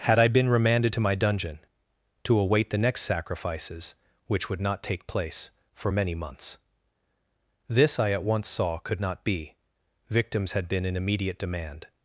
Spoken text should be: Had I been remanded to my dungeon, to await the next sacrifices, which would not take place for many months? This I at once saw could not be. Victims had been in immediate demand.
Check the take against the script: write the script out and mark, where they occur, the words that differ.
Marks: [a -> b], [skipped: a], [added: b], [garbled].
Had I been remanded to my dungeon, to await the next sacrifices, which would not take place for many months? This I at once saw could not be. Victims had been in immediate demand.